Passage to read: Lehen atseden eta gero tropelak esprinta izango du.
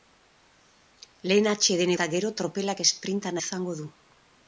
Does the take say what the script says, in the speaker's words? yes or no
yes